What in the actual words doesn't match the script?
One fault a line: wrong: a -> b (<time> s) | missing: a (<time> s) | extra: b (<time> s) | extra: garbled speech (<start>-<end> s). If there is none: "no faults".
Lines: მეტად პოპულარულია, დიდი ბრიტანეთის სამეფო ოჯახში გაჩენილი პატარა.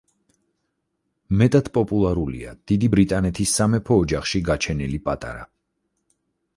no faults